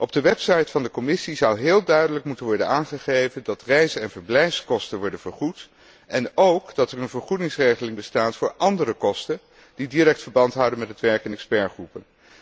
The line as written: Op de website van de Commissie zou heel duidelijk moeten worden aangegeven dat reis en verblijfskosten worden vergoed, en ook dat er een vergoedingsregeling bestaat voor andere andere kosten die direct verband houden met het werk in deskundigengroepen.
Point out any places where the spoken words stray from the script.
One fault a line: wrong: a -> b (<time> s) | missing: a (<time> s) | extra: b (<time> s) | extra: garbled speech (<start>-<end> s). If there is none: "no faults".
missing: andere (8.9 s)